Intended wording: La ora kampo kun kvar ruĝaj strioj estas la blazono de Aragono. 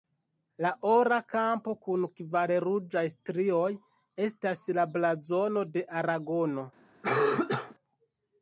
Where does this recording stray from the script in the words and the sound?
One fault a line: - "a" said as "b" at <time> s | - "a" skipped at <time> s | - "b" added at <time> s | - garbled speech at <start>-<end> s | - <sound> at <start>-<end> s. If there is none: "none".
- cough at 7.0-7.8 s